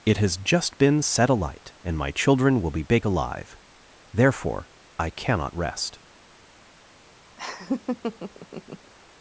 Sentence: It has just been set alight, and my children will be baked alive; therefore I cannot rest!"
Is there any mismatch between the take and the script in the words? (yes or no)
yes